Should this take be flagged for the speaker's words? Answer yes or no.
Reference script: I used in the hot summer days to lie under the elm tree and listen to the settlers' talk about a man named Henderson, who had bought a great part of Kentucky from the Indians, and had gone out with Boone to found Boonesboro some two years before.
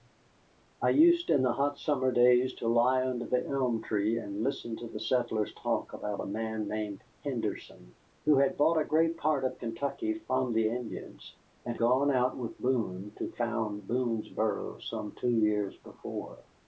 yes